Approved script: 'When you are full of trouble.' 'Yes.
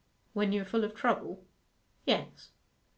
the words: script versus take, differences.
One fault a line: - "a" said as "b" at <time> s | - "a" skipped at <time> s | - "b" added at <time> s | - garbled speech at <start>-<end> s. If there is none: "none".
none